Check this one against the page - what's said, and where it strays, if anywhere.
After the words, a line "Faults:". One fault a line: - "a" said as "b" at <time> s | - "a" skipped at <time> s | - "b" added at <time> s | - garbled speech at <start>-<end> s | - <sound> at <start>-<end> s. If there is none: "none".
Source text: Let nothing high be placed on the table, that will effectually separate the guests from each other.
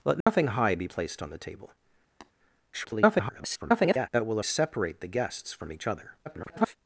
Let nothing high be placed on the table, [garbled] that will separate the guests from each other. [garbled]
Faults:
- dropout at 0.2-0.3 s
- tap at 2.2-2.3 s
- garbled speech at 2.7-4.1 s
- "effectually" skipped at 4.4 s
- garbled speech at 6.3-6.8 s